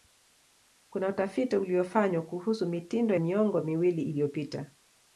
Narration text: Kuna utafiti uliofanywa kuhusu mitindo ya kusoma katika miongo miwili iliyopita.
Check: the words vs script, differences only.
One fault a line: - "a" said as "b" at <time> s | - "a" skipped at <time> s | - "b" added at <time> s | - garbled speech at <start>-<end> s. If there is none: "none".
- "ya kusoma katika" skipped at 3.1 s